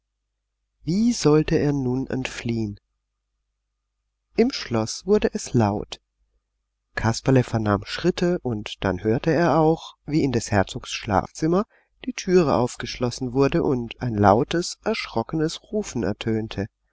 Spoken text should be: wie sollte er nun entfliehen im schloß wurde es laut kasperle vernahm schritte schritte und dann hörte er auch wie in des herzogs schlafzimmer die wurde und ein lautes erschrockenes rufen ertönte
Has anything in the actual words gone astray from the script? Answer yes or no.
yes